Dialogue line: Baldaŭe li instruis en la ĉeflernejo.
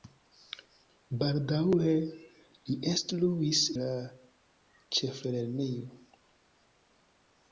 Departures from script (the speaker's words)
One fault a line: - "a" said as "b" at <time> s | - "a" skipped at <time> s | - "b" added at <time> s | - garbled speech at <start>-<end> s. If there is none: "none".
- "en" skipped at 3.6 s